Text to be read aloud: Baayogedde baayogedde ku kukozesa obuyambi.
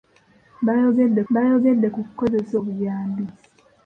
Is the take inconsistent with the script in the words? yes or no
no